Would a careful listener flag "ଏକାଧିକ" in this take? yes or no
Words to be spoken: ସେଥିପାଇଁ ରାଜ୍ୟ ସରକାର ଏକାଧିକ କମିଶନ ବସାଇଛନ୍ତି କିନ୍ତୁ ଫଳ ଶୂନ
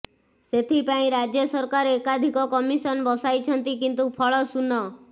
no